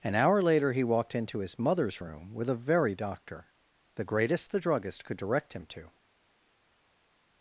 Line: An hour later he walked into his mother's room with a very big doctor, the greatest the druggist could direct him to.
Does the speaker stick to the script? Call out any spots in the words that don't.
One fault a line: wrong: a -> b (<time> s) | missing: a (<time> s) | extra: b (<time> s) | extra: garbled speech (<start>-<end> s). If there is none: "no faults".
missing: big (3.0 s)